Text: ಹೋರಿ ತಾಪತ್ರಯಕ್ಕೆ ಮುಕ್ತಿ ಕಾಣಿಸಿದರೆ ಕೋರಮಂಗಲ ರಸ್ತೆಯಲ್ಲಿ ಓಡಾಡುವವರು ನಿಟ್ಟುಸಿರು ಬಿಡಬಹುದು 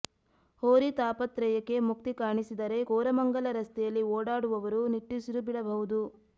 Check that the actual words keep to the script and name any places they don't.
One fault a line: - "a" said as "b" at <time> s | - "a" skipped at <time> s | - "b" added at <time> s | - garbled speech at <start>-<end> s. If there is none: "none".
none